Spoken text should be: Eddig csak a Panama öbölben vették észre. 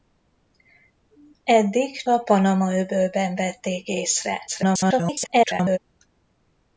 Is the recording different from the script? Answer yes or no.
yes